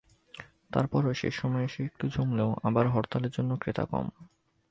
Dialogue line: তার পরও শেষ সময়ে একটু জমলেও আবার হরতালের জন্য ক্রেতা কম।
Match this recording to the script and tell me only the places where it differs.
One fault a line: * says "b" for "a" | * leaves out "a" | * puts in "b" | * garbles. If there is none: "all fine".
* puts in "এসে"